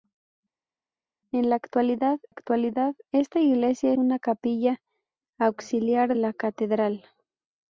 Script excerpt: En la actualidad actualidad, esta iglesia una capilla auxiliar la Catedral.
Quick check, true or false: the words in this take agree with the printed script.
true